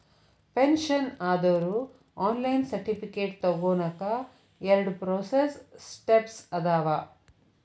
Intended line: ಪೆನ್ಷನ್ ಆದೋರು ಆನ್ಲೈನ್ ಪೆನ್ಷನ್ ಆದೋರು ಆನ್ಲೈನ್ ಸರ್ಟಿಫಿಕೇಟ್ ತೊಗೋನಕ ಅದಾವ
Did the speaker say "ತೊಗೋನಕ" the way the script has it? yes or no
no